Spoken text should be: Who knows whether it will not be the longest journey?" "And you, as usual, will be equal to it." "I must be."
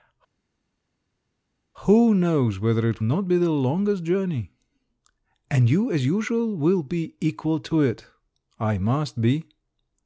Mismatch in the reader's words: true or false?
true